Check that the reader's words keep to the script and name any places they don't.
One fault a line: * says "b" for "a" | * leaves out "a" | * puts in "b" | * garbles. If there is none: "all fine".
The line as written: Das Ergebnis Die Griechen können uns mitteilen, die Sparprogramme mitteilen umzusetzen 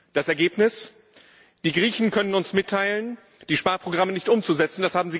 * says "nicht" for "mitteilen"